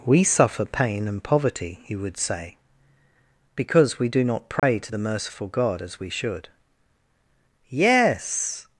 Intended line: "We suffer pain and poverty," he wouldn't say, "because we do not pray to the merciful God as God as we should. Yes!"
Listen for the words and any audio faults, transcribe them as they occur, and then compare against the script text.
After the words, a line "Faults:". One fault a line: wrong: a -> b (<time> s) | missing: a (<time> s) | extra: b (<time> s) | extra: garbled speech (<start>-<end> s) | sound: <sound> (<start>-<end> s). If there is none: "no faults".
"We suffer pain and poverty," he would say, "because we do not pray to the merciful God as we should. Yes!"
Faults:
wrong: wouldn't -> would (1.9 s)
sound: dropout (4.6-4.6 s)
missing: God as (6.0 s)